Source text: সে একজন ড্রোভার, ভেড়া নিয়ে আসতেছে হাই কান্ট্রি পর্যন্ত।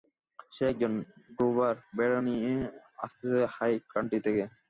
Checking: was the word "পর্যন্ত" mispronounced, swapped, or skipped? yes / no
yes